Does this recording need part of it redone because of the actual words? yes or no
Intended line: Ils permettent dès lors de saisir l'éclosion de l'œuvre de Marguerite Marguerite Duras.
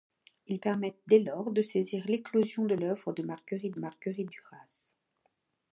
no